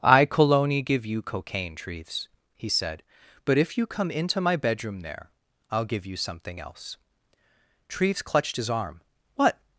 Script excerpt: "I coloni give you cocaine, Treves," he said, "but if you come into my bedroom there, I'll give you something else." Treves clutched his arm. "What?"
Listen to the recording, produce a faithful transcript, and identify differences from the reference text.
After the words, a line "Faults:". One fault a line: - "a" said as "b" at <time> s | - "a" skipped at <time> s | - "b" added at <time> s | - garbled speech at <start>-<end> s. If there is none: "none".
"I coloni give you cocaine, Treves," he said, "but if you come into my bedroom there, I'll give you something else." Treves clutched his arm. "What?"
Faults:
none